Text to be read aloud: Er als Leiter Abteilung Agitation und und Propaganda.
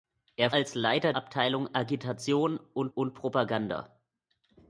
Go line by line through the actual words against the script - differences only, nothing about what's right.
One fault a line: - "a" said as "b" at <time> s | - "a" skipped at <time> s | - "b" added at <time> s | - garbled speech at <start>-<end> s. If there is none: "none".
none